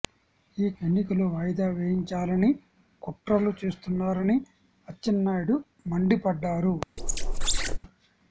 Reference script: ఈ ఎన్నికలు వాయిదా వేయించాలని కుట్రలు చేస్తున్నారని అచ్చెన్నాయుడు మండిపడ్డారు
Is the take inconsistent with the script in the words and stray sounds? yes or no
yes